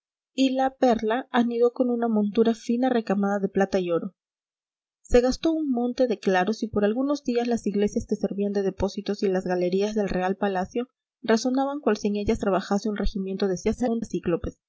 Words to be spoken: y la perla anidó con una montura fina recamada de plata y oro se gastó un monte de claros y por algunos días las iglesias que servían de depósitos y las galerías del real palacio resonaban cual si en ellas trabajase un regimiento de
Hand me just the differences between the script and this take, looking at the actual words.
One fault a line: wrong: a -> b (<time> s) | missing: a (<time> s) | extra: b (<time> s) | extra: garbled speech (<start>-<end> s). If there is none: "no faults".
extra: garbled speech (13.6-14.1 s)